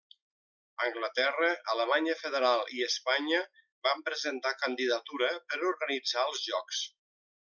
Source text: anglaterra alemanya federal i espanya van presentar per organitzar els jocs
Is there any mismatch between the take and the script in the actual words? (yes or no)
yes